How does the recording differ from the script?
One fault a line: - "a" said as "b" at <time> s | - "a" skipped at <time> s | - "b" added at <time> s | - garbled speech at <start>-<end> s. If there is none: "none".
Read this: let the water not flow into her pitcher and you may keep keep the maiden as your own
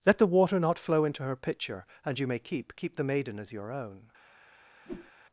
none